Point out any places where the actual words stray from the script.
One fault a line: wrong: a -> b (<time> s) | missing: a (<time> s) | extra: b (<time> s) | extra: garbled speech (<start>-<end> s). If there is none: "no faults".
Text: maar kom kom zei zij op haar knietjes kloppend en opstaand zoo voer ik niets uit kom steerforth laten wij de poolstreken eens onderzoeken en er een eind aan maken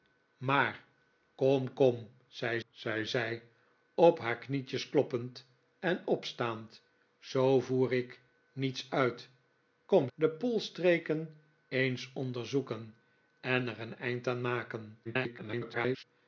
extra: zei (2.7 s)
missing: steerforth laten wij (10.1 s)
extra: garbled speech (15.0-16.0 s)